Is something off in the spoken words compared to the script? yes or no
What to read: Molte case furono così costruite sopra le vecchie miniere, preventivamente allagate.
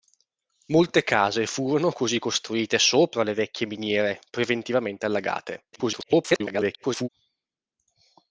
yes